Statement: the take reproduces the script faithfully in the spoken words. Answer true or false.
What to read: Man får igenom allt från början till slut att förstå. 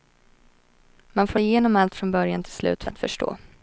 true